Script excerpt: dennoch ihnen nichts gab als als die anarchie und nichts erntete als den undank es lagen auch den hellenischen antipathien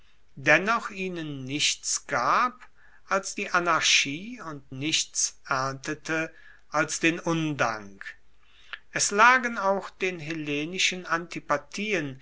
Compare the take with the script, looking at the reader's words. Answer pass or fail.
fail